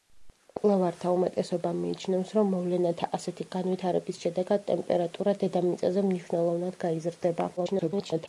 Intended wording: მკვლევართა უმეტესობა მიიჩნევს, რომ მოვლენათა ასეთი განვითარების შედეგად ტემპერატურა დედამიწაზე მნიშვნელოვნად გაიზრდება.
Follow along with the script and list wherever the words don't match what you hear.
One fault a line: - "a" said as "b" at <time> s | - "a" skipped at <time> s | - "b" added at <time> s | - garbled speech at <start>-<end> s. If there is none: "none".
- garbled speech at 7.6-8.3 s